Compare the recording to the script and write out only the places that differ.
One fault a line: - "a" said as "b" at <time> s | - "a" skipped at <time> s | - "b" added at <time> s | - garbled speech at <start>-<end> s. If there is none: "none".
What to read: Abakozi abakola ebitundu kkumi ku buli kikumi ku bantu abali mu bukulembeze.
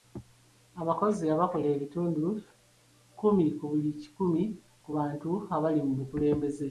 none